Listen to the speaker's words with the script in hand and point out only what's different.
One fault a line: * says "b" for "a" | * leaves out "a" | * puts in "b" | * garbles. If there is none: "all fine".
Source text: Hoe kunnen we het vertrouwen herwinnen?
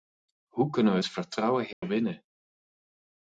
all fine